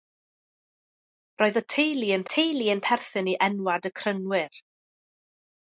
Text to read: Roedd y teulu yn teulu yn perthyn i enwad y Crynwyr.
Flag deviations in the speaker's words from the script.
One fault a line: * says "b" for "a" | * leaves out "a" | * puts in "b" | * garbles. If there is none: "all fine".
all fine